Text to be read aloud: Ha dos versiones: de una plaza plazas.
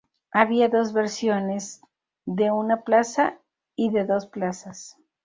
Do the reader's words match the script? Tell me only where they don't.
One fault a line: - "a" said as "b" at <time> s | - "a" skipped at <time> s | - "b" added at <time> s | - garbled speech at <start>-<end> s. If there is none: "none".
- "Ha" said as "Había" at 0.3 s
- "y de dos" added at 3.8 s